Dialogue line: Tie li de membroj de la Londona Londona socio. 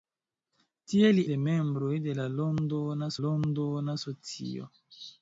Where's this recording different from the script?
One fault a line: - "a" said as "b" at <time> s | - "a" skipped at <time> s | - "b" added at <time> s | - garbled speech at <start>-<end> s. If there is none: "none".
none